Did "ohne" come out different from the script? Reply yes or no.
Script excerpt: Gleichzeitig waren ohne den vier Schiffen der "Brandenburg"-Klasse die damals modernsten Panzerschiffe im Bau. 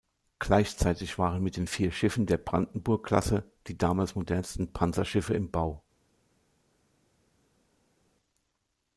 yes